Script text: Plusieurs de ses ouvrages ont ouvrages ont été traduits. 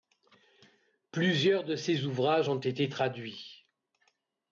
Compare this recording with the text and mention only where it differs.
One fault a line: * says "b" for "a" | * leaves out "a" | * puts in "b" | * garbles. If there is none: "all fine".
* leaves out "ouvrages ont"